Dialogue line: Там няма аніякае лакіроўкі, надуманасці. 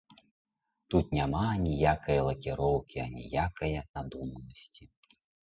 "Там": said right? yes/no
no